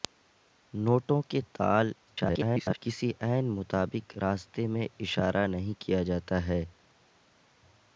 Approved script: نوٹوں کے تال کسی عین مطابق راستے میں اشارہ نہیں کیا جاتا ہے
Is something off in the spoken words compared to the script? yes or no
yes